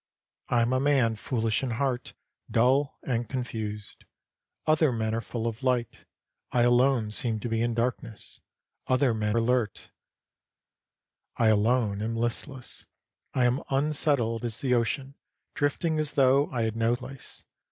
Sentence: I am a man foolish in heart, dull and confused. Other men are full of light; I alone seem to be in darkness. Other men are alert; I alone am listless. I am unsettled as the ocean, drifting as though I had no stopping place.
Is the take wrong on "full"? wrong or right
right